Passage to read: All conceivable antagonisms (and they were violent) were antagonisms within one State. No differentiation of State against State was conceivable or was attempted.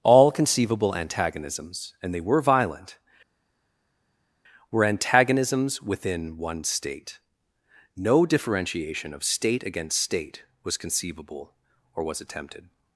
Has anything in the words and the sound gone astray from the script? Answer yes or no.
no